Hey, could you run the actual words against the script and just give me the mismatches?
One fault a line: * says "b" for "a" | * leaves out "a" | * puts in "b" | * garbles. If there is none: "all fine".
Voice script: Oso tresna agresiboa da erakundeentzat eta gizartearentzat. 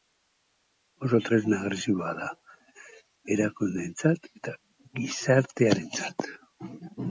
all fine